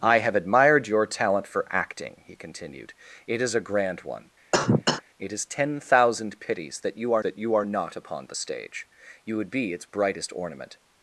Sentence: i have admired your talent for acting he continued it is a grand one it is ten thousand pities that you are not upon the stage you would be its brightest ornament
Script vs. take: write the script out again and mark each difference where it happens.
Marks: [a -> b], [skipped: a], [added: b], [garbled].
i have admired your talent for acting he continued it is a grand one it is ten thousand pities that you are [added: that you are] not upon the stage you would be its brightest ornament